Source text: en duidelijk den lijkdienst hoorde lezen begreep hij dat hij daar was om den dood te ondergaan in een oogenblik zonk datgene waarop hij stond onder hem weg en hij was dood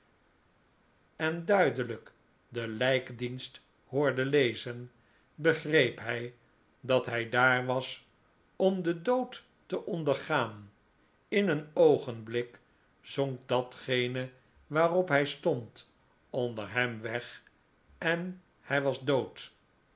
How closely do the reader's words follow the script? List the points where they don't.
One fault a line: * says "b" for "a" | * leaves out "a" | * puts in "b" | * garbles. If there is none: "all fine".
all fine